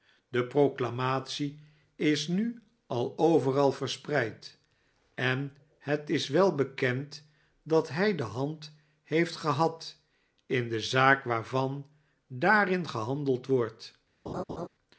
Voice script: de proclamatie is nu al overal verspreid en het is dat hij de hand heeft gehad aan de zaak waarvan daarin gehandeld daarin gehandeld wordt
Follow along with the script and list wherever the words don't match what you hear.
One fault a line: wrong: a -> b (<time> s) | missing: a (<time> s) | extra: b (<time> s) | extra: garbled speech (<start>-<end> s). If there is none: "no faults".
extra: wel bekend (6.3 s)
wrong: aan -> in (10.4 s)
missing: daarin gehandeld (13.5 s)